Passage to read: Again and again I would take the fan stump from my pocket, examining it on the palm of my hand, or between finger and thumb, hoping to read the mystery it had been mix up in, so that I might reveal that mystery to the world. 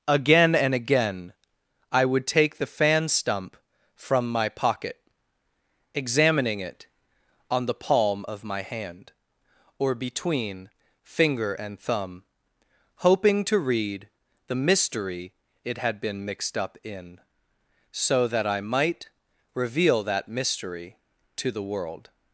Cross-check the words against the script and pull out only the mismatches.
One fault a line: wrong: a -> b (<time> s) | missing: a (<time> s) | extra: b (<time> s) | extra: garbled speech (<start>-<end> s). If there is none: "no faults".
wrong: mix -> mixed (16.2 s)